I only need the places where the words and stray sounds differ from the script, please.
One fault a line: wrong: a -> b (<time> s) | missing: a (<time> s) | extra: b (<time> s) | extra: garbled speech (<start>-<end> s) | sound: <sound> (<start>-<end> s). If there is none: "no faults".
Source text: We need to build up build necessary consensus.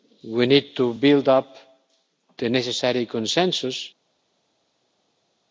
wrong: build -> the (2.4 s)